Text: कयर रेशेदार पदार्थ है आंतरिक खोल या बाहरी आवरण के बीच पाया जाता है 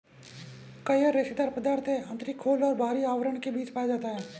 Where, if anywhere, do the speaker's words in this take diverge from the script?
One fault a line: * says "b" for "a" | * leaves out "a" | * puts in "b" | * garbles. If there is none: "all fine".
* says "और" for "या"